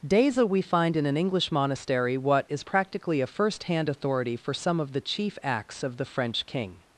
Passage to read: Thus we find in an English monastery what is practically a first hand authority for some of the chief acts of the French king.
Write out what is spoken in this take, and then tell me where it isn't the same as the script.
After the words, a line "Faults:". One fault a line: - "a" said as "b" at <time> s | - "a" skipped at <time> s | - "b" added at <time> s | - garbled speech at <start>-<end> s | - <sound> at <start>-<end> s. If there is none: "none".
Deza we find in an English monastery what is practically a first hand authority for some of the chief acts of the French king.
Faults:
- "Thus" said as "Deza" at 0.0 s